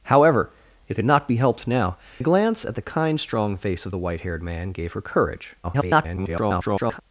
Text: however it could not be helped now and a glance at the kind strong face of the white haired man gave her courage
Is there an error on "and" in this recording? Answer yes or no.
yes